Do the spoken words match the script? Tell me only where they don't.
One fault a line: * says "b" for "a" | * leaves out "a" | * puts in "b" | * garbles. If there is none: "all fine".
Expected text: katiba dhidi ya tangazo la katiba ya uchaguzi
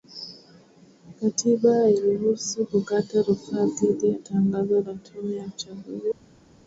* puts in "hairuhusu kukata rufaa"
* says "tume" for "katiba"